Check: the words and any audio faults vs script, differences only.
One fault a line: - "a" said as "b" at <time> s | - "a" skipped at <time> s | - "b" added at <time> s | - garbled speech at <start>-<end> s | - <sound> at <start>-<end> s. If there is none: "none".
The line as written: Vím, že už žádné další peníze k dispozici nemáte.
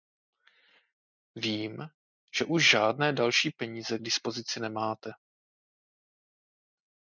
none